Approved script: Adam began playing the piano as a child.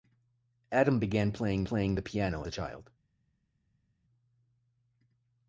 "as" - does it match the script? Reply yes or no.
no